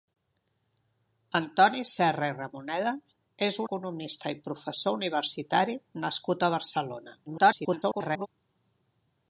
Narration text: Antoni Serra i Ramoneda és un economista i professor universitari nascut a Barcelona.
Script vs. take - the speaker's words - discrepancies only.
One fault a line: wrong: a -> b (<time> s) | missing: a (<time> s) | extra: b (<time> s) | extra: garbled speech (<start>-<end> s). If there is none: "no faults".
missing: un (3.6 s)
extra: garbled speech (7.3-8.3 s)